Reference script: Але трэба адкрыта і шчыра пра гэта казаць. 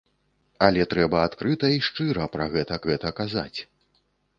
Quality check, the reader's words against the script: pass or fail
fail